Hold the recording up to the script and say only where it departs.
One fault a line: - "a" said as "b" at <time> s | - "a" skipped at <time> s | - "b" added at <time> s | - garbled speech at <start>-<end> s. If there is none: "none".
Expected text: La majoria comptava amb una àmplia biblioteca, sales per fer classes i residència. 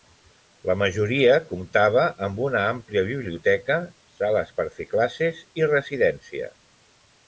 none